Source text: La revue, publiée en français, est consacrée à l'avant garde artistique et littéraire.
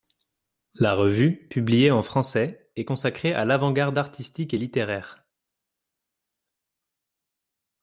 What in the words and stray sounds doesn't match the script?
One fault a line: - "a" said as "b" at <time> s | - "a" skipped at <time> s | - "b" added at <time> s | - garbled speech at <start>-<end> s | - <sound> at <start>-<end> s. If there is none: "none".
none